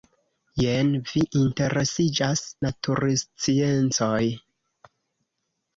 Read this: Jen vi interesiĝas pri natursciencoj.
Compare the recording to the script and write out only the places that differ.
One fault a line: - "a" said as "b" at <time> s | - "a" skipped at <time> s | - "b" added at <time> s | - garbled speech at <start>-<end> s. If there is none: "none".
- "pri" skipped at 2.4 s